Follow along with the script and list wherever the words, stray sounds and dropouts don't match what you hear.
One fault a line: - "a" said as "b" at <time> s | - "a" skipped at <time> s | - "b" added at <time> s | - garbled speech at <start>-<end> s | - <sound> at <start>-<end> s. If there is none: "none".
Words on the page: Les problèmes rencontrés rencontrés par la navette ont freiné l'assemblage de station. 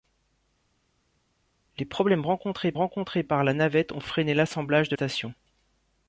none